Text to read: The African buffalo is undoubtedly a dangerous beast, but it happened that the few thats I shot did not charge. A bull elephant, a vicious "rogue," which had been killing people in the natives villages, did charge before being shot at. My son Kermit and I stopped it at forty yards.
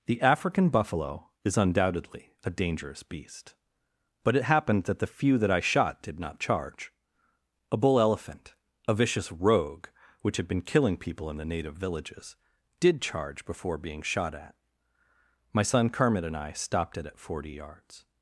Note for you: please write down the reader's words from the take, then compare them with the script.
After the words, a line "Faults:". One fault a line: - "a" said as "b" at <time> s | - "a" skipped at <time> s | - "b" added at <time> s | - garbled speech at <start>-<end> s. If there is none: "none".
The African buffalo is undoubtedly a dangerous beast, but it happened that the few that I shot did not charge. A bull elephant, a vicious "rogue," which had been killing people in the native villages, did charge before being shot at. My son Kermit and I stopped it at forty yards.
Faults:
- "thats" said as "that" at 5.4 s
- "natives" said as "native" at 11.4 s